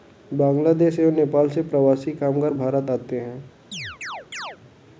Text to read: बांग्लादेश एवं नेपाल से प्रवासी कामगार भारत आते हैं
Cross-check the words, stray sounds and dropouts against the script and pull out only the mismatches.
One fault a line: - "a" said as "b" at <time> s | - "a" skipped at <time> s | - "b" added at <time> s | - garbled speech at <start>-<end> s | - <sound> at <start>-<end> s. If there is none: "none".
- chirp at 3.7-4.6 s